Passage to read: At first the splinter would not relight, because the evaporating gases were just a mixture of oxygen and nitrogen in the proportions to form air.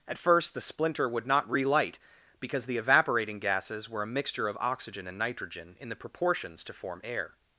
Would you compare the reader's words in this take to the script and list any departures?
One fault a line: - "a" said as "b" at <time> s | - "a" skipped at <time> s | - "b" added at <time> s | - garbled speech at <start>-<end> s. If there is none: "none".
- "just" skipped at 4.0 s